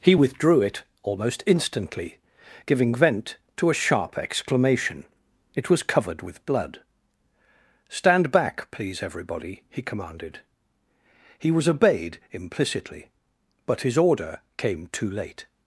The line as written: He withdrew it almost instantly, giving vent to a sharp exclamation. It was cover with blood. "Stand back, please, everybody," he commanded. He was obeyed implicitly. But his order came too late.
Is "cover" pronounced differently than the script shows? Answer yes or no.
yes